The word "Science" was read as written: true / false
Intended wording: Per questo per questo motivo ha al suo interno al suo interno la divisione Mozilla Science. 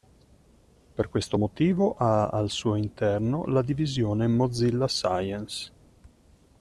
true